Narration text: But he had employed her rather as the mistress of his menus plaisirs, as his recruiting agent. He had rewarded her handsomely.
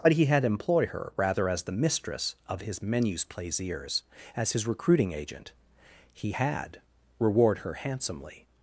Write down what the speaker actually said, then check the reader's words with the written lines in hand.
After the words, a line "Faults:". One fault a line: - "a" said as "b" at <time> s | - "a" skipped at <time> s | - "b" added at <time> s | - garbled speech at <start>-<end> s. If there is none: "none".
But he had employ her rather as the mistress of his menus plaisirs, as his recruiting agent. He had reward her handsomely.
Faults:
- "employed" said as "employ" at 0.5 s
- "rewarded" said as "reward" at 7.2 s